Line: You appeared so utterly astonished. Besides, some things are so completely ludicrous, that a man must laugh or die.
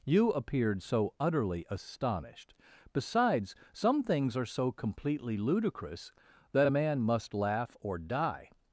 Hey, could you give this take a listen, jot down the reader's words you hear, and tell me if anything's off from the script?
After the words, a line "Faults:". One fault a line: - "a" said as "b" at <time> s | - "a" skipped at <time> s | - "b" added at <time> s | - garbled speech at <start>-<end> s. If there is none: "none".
You appeared so utterly astonished. Besides, some things are so completely ludicrous, that a man must laugh or die.
Faults:
none